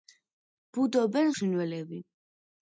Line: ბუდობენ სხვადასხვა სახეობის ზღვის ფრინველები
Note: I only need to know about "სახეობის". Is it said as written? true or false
false